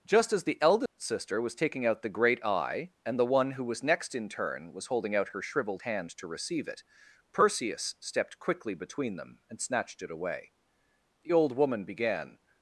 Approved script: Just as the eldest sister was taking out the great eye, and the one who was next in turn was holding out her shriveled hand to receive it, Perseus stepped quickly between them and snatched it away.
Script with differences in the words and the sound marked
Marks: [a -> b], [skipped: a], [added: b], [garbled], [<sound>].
Just as the eldest [dropout] sister was taking out the great eye, and the one who was next in turn was holding out her shriveled hand to receive it, Perseus stepped quickly between them and snatched it away. [added: The old woman began]